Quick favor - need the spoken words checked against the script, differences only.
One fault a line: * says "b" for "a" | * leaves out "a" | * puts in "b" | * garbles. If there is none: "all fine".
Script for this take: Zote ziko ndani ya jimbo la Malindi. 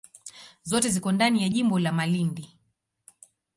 all fine